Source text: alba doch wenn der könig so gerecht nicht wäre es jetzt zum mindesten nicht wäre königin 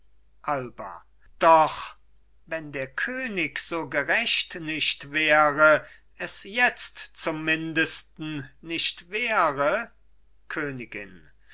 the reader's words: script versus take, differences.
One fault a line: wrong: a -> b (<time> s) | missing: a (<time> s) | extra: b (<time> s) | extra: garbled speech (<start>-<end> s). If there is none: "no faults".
no faults